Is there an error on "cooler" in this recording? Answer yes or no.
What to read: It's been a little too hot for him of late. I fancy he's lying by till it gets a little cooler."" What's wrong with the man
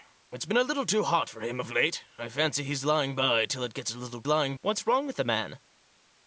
yes